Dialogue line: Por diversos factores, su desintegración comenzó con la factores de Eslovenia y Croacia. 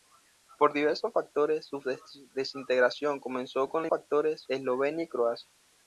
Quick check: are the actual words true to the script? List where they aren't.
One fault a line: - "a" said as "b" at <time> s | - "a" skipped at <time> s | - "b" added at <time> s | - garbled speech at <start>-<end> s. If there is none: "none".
none